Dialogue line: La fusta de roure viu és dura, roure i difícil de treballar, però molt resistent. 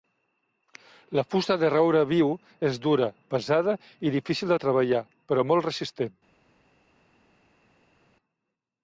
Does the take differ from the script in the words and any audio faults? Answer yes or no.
yes